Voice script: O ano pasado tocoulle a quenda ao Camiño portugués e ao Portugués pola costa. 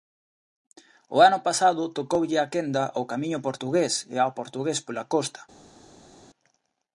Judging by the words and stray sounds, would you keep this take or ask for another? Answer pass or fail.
pass